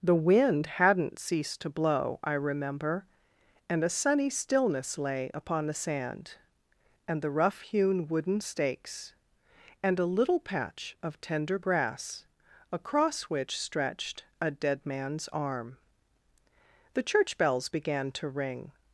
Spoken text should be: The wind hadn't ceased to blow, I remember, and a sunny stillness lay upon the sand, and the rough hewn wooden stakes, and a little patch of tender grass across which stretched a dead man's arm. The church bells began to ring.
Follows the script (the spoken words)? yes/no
yes